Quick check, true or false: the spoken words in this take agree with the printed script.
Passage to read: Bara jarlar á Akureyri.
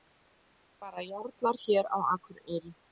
false